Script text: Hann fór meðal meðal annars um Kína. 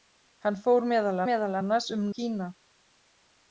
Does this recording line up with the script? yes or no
yes